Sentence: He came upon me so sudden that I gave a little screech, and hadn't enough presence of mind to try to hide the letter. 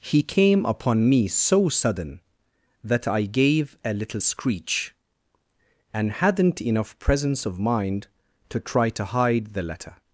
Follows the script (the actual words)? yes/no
yes